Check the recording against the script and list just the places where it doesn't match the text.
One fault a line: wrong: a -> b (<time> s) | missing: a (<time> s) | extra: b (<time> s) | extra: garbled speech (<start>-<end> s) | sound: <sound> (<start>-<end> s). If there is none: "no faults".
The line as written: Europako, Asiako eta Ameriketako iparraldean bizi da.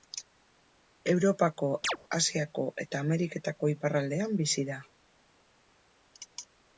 sound: chirp (1.8-2.0 s)